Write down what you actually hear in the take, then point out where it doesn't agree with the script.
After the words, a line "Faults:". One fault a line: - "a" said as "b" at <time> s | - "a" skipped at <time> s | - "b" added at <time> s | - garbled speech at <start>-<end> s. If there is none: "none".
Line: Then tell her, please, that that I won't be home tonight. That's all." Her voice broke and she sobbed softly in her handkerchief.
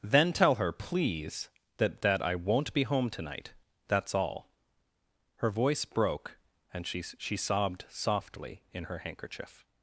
Then tell her, please, that that I won't be home tonight. That's all." Her voice broke and she she sobbed softly in her handkerchief.
Faults:
- "she" added at 7.0 s